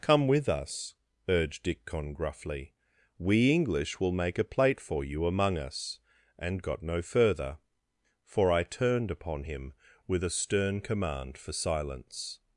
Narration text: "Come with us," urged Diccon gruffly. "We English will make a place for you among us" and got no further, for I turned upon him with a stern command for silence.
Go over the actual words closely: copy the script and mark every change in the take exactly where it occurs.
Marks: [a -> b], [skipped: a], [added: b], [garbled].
"Come with us," urged Diccon gruffly. "We English will make a [place -> plate] for you among us" and got no further, for I turned upon him with a stern command for silence.